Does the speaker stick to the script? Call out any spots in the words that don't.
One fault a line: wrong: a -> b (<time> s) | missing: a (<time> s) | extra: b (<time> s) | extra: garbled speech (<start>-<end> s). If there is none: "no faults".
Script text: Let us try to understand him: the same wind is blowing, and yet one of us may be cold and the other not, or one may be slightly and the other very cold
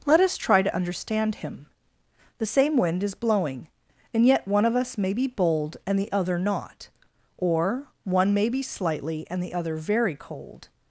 wrong: cold -> bold (5.3 s)